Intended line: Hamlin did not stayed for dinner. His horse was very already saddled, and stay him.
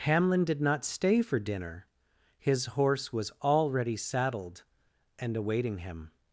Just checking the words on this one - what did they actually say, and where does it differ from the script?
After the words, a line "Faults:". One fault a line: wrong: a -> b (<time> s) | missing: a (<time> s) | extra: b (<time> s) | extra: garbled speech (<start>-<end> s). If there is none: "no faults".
Hamlin did not stay for dinner. His horse was already saddled, and awaiting him.
Faults:
wrong: stayed -> stay (0.8 s)
missing: very (3.3 s)
wrong: stay -> awaiting (5.3 s)